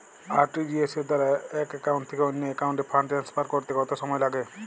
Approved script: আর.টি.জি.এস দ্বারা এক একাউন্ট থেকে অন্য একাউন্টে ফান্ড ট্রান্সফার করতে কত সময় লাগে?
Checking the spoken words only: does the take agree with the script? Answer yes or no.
yes